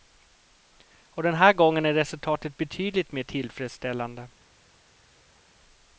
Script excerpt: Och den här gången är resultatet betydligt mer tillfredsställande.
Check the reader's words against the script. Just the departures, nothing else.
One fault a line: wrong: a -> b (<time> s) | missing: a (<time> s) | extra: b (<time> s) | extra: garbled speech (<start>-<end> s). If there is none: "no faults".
no faults